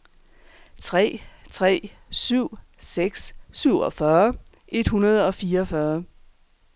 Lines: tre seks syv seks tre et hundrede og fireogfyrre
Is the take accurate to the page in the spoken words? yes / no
no